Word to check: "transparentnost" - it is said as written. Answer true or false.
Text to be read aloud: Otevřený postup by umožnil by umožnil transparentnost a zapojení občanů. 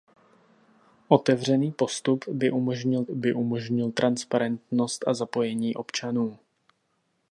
true